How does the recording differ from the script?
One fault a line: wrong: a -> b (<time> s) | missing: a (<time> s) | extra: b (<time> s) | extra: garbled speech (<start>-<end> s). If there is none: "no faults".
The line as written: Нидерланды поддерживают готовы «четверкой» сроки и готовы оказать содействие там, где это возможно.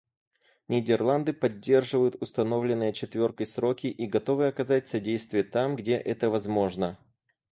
wrong: готовы -> установленные (2.2 s)